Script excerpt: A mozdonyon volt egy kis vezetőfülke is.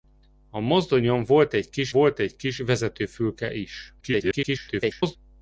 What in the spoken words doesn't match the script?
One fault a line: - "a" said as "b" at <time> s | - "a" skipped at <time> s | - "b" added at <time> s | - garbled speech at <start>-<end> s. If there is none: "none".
- "volt egy kis" added at 1.9 s
- garbled speech at 4.0-5.2 s